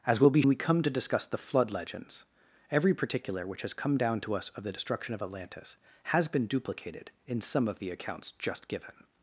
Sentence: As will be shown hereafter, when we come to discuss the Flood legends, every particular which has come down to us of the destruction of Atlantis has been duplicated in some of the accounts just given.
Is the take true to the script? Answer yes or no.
no